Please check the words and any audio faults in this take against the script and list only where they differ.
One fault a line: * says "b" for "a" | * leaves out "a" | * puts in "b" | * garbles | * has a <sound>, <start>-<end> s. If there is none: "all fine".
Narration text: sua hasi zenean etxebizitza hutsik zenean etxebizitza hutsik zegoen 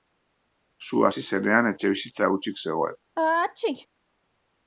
* leaves out "zenean etxebizitza hutsik"
* has a sneeze, 3.2-3.9 s